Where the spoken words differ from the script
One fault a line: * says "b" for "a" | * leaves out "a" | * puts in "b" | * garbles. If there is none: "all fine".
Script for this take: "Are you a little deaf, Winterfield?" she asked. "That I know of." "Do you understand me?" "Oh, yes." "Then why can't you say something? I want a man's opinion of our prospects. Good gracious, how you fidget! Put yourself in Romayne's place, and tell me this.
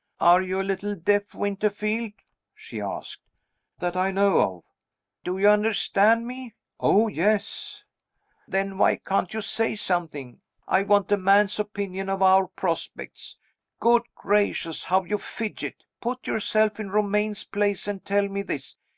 all fine